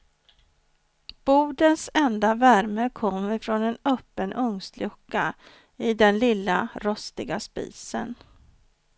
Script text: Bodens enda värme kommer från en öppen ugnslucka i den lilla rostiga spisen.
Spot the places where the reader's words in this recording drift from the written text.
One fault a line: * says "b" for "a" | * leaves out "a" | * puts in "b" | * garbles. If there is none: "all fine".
all fine